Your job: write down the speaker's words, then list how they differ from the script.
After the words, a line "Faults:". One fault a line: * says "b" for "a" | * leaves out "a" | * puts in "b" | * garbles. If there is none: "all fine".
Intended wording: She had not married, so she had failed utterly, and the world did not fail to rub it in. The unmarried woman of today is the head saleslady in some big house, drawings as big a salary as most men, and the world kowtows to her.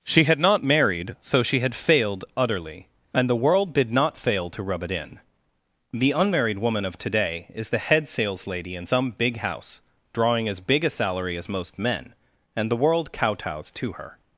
She had not married, so she had failed utterly, and the world did not fail to rub it in. The unmarried woman of today is the head saleslady in some big house, drawing as big a salary as most men, and the world kowtows to her.
Faults:
* says "drawing" for "drawings"